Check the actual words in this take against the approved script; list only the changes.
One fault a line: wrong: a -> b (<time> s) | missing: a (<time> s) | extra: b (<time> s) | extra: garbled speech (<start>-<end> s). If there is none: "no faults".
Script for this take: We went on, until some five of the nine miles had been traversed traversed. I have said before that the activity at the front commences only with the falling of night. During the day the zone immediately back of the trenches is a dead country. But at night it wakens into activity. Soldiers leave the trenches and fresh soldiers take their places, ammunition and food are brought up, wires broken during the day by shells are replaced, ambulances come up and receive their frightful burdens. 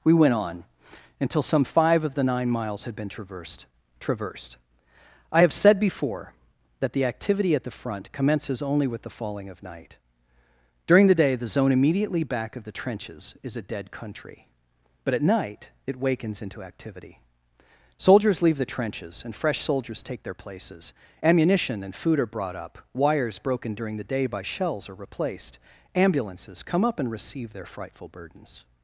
no faults